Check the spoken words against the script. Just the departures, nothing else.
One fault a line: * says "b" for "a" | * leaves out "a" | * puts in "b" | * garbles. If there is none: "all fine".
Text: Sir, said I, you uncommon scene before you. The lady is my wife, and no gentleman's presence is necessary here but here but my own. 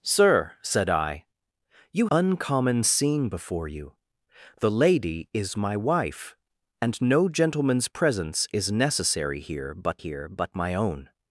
all fine